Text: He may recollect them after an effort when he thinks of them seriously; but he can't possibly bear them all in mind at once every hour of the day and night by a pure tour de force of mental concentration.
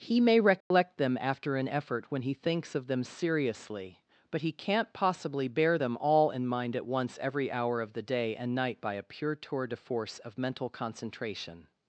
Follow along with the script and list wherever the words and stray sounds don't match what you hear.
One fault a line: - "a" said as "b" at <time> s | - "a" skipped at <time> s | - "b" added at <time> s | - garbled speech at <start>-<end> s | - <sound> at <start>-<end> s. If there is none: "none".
- dropout at 0.6-0.7 s